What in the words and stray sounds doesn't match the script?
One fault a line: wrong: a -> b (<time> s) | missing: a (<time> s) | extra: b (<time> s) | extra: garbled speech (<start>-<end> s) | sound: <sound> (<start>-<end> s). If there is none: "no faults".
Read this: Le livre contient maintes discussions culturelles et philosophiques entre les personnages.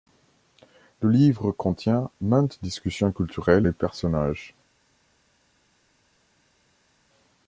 missing: et philosophiques entre (3.7 s)